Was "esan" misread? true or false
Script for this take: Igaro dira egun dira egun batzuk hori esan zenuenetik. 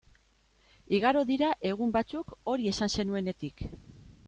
false